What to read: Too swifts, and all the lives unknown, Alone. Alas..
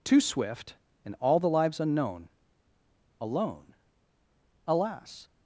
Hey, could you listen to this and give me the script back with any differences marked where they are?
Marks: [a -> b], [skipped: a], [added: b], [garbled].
Too [swifts, -> swift] and all the lives unknown, Alone. Alas..